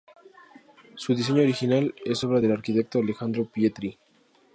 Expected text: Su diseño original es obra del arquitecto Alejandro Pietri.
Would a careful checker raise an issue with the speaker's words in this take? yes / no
no